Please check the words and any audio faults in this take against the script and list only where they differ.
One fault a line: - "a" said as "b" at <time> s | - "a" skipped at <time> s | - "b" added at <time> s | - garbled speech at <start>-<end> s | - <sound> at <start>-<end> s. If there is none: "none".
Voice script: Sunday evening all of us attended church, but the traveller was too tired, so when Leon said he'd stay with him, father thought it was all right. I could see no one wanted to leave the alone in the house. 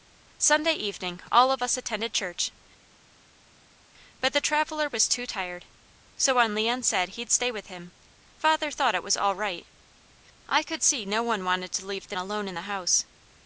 none